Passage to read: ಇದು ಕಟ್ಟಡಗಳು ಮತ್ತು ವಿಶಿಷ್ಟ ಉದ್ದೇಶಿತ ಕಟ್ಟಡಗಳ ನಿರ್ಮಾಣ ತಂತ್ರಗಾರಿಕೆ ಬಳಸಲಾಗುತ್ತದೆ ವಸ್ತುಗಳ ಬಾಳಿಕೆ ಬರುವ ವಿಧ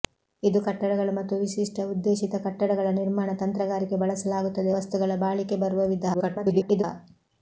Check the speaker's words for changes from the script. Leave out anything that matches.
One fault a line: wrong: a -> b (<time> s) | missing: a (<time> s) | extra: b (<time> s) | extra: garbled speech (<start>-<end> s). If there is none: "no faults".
extra: garbled speech (6.1-6.8 s)